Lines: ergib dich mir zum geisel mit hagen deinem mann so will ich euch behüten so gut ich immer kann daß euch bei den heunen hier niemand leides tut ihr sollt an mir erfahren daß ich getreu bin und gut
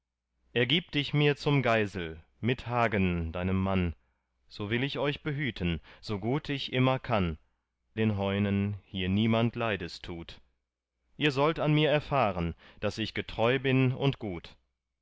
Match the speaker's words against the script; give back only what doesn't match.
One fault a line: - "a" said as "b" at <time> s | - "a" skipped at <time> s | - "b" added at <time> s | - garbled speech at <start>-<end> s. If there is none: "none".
- "daß euch bei" skipped at 7.4 s